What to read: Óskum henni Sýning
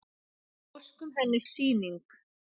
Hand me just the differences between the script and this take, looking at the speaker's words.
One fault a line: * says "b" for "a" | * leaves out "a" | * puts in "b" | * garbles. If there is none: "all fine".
all fine